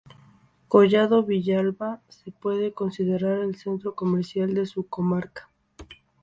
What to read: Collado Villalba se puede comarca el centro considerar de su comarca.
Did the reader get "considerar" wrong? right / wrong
wrong